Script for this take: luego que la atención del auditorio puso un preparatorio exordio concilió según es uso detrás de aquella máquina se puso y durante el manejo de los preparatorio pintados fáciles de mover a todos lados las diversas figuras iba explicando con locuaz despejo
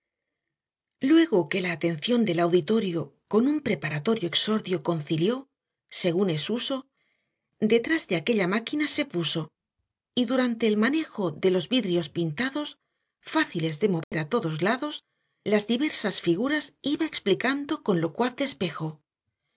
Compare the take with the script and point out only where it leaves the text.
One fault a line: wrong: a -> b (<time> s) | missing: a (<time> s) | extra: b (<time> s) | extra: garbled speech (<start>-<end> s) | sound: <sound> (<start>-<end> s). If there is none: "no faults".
wrong: puso -> con (3.3 s)
wrong: preparatorio -> vidrios (11.7 s)
sound: dropout (14.0-14.1 s)